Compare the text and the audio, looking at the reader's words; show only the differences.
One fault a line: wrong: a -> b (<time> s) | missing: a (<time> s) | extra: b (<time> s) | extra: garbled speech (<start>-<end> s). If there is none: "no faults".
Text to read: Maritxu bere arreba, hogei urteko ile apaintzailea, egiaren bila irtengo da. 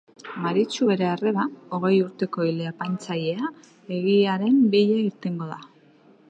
no faults